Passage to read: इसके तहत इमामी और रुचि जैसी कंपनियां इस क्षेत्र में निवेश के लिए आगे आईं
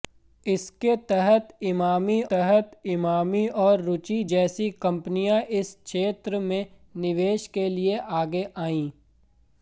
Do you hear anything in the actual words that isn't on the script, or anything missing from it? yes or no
yes